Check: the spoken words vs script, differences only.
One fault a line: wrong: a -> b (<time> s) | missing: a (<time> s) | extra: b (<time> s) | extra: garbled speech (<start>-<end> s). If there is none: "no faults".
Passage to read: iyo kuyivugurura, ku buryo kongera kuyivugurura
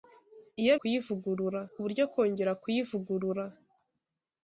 no faults